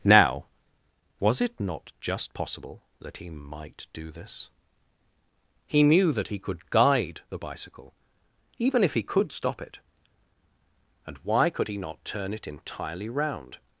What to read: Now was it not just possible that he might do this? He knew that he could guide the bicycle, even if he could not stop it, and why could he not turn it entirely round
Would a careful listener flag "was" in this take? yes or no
no